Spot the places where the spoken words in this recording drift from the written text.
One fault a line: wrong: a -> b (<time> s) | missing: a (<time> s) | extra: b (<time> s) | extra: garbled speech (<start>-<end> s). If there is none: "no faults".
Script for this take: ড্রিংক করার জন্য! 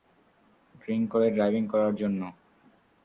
extra: করে ড্রাইভিং (1.1 s)